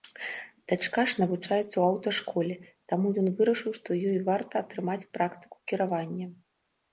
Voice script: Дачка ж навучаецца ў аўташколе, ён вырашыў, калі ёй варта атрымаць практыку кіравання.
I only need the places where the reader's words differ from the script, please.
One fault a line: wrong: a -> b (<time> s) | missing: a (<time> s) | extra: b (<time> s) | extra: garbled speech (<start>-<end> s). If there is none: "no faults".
extra: таму (2.9 s)
wrong: калі -> што (3.8 s)